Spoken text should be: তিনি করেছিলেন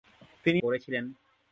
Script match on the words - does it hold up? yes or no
yes